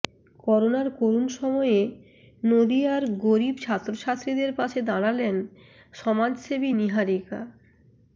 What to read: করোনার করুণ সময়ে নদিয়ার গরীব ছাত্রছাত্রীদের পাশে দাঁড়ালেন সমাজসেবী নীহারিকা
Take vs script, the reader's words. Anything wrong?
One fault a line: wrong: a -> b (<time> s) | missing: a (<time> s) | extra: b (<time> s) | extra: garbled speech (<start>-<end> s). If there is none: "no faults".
no faults